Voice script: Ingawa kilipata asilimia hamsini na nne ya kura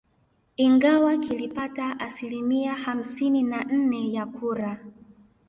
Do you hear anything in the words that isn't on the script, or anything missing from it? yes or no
no